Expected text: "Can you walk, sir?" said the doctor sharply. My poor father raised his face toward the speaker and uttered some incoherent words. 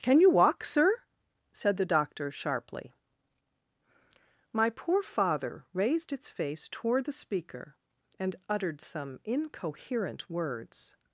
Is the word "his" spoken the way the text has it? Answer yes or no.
no